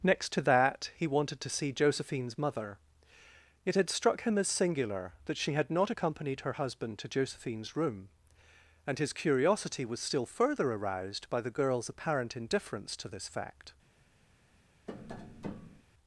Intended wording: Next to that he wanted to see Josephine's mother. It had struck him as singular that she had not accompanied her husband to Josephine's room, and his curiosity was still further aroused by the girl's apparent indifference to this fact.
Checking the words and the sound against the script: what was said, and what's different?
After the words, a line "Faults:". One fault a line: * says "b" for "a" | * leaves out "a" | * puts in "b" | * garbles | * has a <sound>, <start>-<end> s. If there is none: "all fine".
Next to that he wanted to see Josephine's mother. It had struck him as singular that she had not accompanied her husband to Josephine's room, and his curiosity was still further aroused by the girl's apparent indifference to this fact.
Faults:
* has a tap, 14.9-15.8 s